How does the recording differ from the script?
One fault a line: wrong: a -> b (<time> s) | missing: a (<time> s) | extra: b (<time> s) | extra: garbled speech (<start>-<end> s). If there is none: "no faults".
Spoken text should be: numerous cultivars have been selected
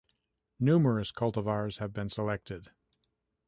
no faults